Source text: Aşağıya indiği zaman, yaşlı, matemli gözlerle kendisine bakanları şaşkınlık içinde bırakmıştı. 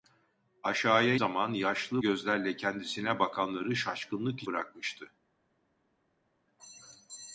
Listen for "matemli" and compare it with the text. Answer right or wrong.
wrong